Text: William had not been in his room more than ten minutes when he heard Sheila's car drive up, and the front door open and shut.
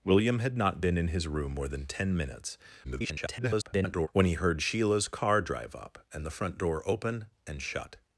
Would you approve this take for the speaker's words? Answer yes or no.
no